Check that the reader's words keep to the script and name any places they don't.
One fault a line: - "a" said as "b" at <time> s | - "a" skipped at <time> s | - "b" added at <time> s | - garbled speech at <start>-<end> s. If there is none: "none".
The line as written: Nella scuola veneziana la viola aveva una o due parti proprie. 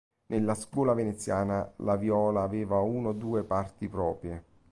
none